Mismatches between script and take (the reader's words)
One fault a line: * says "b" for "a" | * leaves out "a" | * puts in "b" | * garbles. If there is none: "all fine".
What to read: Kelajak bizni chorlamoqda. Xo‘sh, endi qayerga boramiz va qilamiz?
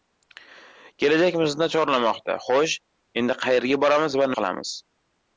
all fine